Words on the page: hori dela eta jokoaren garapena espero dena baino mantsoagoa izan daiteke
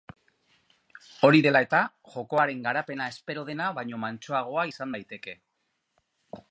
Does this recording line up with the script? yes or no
yes